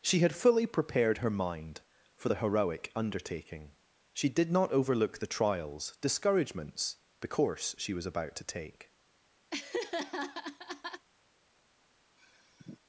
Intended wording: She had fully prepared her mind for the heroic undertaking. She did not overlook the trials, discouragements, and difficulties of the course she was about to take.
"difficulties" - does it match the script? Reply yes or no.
no